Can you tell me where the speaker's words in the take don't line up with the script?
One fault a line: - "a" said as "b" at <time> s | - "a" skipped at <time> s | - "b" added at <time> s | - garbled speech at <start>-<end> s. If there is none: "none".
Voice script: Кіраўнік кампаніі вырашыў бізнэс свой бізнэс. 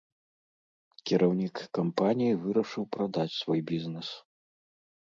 - "бізнэс" said as "прадаць" at 3.0 s